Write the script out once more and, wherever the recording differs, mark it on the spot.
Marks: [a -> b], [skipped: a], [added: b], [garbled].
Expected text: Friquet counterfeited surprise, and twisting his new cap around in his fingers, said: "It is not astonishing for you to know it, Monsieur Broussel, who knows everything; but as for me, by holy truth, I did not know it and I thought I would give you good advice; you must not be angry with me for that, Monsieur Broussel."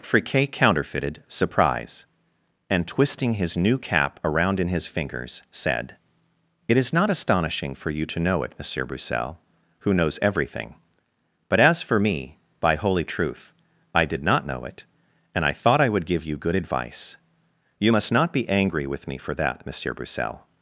Friquet counterfeited surprise, and twisting his new cap around in his fingers, said: "It is not astonishing for you to know it, Monsieur Broussel, who knows everything; but as for me, by holy truth, I did not know it and I thought I would give you good advice; you must not be angry with me for that, Monsieur Broussel."